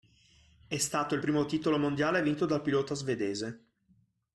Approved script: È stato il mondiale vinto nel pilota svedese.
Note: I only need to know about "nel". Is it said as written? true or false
false